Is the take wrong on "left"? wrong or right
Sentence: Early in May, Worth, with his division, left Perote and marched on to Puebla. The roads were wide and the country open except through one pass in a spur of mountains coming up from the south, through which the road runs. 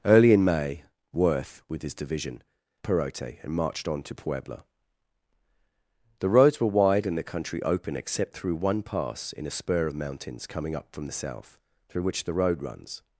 wrong